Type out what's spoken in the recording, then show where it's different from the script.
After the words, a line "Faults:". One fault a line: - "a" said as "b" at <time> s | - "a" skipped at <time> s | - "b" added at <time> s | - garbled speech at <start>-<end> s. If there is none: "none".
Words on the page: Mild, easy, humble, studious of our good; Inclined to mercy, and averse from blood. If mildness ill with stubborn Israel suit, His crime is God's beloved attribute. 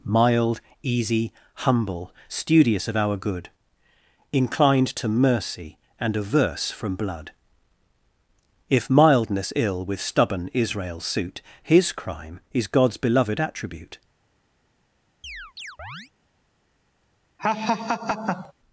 Mild, easy, humble, studious of our good; Inclined to mercy, and averse from blood. If mildness ill with stubborn Israel suit, His crime is God's beloved attribute.
Faults:
none